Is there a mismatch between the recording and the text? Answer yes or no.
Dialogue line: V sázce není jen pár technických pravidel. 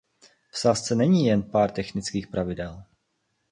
no